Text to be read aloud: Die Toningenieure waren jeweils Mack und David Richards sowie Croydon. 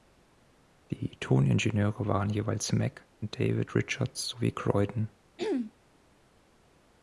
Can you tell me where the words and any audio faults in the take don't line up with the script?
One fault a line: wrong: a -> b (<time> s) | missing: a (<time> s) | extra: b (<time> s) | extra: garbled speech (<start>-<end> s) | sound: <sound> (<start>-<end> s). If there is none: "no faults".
sound: throat clearing (5.4-5.7 s)